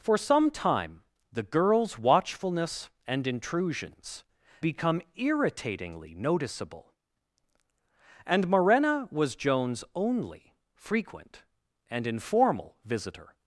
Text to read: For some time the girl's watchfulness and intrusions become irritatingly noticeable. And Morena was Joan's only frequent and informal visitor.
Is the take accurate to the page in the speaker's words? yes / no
yes